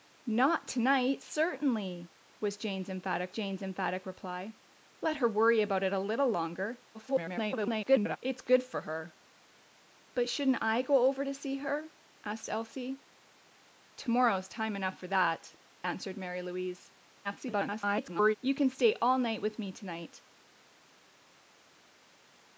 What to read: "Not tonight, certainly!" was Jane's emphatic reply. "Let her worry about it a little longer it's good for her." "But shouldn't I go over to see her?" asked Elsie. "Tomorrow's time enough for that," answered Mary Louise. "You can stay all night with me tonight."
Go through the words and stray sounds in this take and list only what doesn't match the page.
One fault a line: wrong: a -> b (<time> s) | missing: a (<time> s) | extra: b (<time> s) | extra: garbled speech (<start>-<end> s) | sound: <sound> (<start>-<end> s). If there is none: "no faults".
extra: Jane's emphatic (3.3 s)
extra: garbled speech (6.9-8.2 s)
extra: garbled speech (17.2-18.4 s)